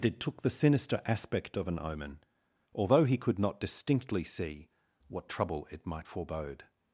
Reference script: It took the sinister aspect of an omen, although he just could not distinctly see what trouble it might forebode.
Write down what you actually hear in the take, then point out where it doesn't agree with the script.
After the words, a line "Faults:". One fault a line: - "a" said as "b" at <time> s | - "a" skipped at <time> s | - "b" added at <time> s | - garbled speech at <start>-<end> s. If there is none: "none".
It took the sinister aspect of an omen, although he could not distinctly see what trouble it might forebode.
Faults:
- "just" skipped at 3.2 s